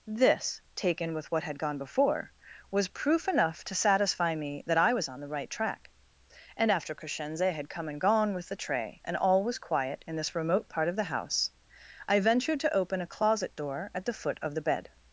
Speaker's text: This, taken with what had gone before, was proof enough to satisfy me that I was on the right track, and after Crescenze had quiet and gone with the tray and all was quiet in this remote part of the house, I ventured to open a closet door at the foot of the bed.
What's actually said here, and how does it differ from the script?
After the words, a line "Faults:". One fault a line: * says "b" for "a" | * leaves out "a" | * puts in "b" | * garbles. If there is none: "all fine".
This, taken with what had gone before, was proof enough to satisfy me that I was on the right track, and after Crescenze had come and gone with the tray and all was quiet in this remote part of the house, I ventured to open a closet door at the foot of the bed.
Faults:
* says "come" for "quiet"